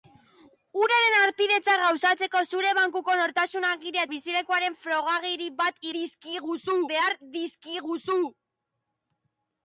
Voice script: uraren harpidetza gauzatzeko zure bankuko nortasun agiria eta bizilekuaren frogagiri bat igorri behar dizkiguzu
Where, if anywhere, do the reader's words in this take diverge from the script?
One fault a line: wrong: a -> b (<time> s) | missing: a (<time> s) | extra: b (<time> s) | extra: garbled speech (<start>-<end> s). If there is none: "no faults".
missing: eta (4.1 s)
wrong: igorri -> dizkiguzu (6.0 s)